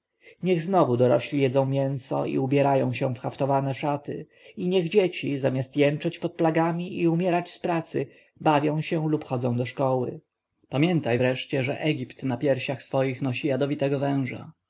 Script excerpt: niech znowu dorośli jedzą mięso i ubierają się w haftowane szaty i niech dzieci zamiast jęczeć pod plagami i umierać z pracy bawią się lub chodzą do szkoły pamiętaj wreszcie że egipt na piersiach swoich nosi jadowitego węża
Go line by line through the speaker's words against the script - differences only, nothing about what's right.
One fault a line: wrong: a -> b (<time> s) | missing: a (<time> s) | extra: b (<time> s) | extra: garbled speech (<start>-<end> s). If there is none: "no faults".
no faults